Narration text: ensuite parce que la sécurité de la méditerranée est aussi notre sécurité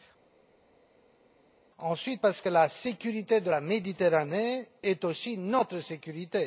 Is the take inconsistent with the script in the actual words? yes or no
no